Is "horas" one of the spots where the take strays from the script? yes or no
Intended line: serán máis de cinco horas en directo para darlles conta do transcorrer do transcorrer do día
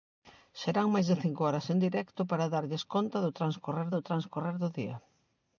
no